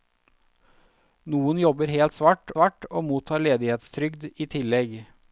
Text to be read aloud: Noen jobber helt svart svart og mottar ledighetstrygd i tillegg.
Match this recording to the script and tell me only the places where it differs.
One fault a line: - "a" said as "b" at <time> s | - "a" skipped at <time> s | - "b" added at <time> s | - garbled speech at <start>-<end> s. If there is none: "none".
none